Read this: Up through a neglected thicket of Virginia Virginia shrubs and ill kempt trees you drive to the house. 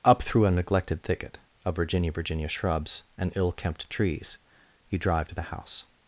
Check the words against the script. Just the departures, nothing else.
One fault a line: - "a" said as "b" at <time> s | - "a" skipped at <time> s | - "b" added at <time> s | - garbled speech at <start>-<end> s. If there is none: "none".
none